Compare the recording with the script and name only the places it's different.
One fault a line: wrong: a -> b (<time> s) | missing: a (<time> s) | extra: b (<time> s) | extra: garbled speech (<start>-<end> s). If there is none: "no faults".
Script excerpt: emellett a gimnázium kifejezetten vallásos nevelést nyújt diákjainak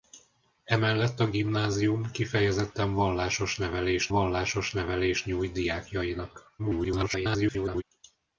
extra: vallásos nevelést (4.1 s)
extra: garbled speech (6.6-7.8 s)